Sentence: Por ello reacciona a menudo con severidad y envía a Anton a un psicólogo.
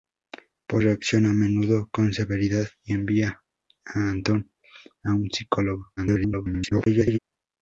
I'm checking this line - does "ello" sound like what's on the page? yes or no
no